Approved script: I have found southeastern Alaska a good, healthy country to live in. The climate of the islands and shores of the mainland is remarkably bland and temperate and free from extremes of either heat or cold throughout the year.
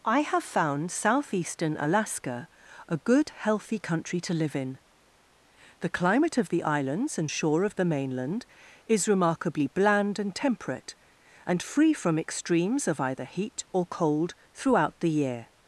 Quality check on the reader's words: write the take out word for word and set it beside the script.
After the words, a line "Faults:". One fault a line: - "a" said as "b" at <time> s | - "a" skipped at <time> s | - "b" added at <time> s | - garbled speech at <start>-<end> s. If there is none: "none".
I have found southeastern Alaska a good, healthy country to live in. The climate of the islands and shore of the mainland is remarkably bland and temperate and free from extremes of either heat or cold throughout the year.
Faults:
- "shores" said as "shore" at 7.3 s